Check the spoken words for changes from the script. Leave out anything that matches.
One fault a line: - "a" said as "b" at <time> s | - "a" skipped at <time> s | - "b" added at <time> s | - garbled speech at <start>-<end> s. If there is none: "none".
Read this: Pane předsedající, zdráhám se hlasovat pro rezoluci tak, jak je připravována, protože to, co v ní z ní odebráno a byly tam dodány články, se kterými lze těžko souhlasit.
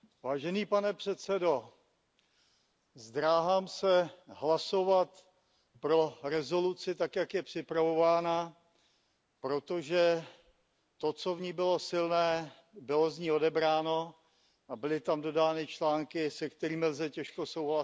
- "bylo silné bylo" added at 11.5 s